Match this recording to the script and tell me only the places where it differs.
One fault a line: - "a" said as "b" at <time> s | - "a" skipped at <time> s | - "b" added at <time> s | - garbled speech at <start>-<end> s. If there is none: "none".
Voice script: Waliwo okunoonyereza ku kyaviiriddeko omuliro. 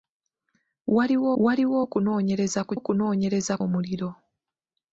- "waliwo" added at 1.4 s
- "kyaviiriddeko" said as "okunoonyereza" at 2.8 s